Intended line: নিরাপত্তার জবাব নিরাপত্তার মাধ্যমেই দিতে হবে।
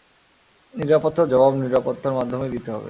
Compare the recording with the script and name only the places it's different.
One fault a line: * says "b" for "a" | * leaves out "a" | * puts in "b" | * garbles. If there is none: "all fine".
all fine